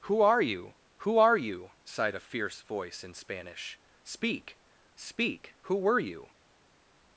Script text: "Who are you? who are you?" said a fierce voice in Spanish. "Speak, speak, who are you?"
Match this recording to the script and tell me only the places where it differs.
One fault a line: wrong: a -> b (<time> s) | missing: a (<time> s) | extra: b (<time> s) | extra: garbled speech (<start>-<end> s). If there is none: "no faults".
wrong: said -> sighed (1.8 s)
wrong: are -> were (5.8 s)